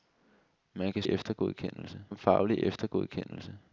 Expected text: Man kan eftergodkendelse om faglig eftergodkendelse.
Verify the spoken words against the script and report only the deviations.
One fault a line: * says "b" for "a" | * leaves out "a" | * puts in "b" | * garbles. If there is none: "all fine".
all fine